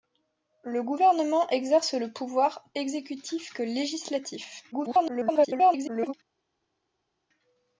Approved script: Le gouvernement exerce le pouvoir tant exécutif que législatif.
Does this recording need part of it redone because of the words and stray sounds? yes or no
yes